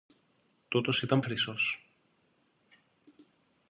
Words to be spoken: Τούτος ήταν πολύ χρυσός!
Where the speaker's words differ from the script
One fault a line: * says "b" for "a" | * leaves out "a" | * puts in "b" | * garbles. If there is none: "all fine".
* leaves out "πολύ"